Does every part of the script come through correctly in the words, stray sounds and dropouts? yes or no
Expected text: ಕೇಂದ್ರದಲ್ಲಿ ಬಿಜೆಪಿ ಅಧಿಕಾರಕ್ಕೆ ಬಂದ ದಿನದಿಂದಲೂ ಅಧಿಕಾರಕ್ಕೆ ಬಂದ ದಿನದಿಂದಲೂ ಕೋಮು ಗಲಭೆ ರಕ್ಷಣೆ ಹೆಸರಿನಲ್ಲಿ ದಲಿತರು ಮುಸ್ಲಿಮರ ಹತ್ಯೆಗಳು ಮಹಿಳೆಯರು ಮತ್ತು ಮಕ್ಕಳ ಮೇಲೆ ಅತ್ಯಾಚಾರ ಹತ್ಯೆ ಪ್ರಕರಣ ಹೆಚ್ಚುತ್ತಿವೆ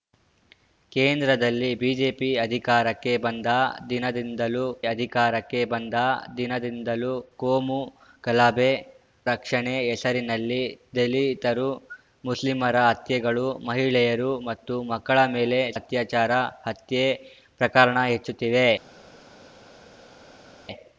yes